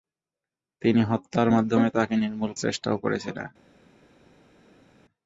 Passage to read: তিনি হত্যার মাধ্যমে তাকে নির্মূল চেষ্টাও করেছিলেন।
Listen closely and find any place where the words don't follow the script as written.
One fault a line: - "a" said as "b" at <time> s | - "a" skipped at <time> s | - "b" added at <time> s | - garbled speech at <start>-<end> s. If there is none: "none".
none